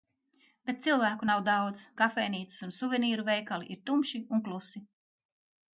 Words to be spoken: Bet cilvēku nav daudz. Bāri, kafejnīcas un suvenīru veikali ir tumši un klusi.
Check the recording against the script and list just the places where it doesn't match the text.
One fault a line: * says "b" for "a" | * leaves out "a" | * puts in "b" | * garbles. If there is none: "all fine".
* leaves out "Bāri"